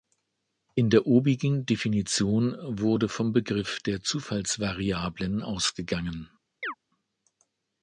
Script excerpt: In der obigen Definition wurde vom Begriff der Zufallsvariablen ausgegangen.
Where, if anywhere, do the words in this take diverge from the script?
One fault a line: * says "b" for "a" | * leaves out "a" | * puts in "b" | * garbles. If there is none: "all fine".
all fine